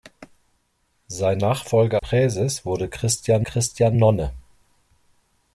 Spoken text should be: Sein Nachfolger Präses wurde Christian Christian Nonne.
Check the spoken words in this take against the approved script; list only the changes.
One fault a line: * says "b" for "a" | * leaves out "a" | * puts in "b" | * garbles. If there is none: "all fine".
all fine